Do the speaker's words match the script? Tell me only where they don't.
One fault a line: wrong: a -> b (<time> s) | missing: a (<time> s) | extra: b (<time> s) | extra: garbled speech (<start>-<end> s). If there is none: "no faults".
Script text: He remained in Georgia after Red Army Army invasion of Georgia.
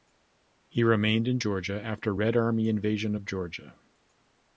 missing: Army (2.7 s)